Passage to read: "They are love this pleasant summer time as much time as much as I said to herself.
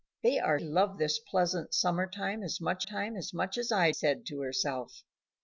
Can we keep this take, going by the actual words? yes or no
yes